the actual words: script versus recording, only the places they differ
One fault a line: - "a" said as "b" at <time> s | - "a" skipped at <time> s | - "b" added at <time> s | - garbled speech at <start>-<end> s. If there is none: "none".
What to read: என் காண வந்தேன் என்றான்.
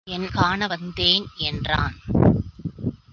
none